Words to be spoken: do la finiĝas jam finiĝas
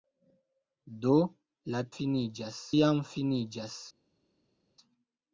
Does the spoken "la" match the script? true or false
true